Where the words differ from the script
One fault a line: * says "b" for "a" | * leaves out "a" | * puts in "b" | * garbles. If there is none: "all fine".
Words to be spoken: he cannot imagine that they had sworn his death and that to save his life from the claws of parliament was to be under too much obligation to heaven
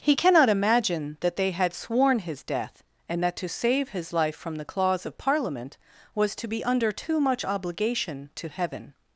all fine